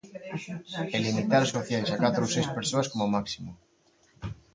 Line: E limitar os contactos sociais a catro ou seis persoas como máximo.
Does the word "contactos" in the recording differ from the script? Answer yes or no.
yes